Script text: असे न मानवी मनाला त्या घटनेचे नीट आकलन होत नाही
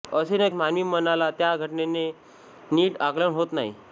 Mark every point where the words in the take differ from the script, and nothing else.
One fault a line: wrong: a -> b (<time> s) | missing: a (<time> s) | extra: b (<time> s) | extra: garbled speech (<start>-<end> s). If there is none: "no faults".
no faults